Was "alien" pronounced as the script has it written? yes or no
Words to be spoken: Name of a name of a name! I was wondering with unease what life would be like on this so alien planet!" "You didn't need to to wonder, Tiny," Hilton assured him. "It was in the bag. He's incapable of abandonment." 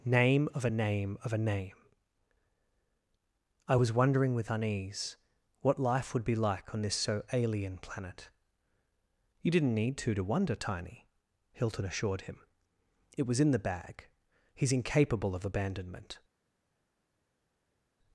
yes